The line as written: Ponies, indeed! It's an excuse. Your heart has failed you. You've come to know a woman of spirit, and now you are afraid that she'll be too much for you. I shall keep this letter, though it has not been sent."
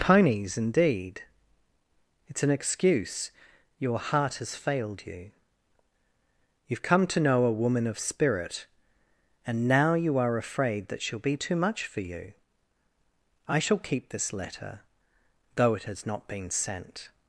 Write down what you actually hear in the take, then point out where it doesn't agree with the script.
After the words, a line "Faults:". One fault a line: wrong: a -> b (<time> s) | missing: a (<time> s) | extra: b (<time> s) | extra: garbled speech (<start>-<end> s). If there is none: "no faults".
Ponies, indeed! It's an excuse. Your heart has failed you. You've come to know a woman of spirit, and now you are afraid that she'll be too much for you. I shall keep this letter, though it has not been sent."
Faults:
no faults